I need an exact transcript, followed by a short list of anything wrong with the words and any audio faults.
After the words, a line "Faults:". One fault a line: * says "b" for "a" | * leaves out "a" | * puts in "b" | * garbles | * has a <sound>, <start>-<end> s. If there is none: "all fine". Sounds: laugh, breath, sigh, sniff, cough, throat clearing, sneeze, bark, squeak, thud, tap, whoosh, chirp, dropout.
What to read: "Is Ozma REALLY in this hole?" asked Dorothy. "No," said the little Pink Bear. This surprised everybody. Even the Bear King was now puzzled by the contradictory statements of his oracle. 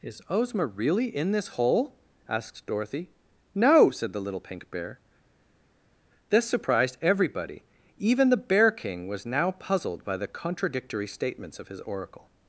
"Is Ozma REALLY in this hole?" asked Dorothy. "No," said the little Pink Bear. This surprised everybody. Even the Bear King was now puzzled by the contradictory statements of his oracle.
Faults:
all fine